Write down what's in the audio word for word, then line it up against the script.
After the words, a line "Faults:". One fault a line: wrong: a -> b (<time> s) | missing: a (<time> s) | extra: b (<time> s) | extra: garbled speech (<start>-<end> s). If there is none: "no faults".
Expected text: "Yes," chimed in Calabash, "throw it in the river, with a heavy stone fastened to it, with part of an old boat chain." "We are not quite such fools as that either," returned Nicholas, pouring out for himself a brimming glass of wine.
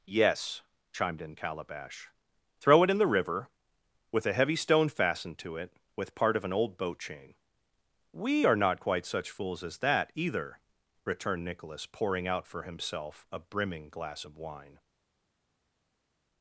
"Yes," chimed in Calabash, "throw it in the river, with a heavy stone fastened to it, with part of an old boat chain." "We are not quite such fools as that either," returned Nicholas, pouring out for himself a brimming glass of wine.
Faults:
no faults